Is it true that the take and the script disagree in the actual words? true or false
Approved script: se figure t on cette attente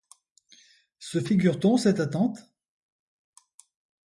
false